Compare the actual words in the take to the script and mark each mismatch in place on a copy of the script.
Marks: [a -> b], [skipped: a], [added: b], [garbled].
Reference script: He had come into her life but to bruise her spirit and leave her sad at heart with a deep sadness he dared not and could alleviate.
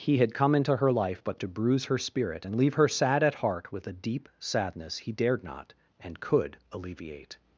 He had come into her life but to bruise her spirit and leave her sad at heart with a deep sadness he dared not and could alleviate.